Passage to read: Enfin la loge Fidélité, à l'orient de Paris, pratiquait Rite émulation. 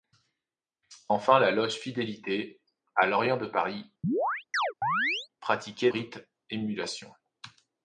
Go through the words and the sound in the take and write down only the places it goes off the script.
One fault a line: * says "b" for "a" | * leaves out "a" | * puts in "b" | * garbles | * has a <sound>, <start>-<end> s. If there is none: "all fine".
* has a chirp, 4.0-5.3 s